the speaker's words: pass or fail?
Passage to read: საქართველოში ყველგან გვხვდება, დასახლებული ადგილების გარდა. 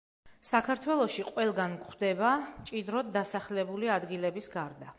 fail